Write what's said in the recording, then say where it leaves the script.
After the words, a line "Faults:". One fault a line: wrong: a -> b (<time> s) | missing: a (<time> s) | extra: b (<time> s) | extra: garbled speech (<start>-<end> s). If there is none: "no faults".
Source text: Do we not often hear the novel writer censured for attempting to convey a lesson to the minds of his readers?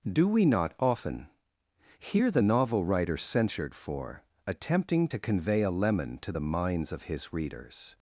Do we not often hear the novel writer censured for attempting to convey a lemon to the minds of his readers?
Faults:
wrong: lesson -> lemon (5.7 s)